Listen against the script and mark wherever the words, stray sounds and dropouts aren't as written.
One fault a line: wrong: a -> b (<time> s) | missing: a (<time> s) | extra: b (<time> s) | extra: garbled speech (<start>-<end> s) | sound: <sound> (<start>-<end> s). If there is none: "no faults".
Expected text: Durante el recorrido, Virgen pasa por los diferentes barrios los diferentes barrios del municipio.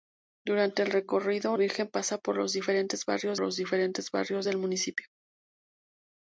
no faults